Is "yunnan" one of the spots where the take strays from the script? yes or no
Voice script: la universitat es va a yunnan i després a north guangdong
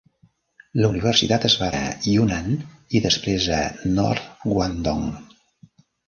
no